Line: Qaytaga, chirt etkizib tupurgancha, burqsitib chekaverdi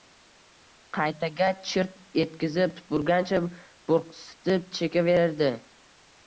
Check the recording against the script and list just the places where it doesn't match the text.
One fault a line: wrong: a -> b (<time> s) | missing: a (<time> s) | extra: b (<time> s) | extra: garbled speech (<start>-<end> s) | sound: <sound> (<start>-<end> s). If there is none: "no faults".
no faults